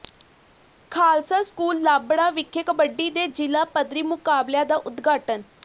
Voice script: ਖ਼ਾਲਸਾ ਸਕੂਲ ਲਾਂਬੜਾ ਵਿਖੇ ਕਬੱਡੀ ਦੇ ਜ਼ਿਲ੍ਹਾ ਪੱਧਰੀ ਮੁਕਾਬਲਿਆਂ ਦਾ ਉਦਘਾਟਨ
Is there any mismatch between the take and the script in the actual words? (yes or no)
no